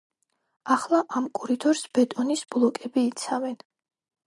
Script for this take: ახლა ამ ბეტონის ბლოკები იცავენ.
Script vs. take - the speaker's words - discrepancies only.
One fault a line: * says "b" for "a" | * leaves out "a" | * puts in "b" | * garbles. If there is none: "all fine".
* puts in "კორიდორს"